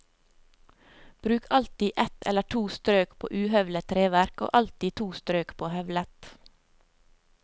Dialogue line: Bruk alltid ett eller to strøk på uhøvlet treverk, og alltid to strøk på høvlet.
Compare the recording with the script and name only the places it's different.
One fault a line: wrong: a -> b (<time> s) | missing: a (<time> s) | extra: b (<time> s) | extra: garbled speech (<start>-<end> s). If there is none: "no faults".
no faults